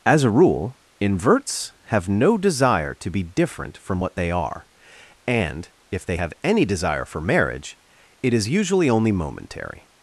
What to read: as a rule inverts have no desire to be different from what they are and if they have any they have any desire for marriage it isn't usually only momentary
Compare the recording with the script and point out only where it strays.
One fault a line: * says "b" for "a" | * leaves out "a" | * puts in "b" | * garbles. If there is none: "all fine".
* leaves out "they have any"
* says "is" for "isn't"